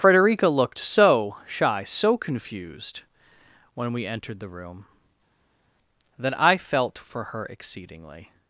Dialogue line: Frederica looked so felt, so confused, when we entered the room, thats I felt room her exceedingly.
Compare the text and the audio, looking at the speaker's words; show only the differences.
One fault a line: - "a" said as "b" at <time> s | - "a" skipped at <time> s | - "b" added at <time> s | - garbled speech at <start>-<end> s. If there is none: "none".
- "felt" said as "shy" at 1.5 s
- "thats" said as "that" at 6.2 s
- "room" said as "for" at 7.0 s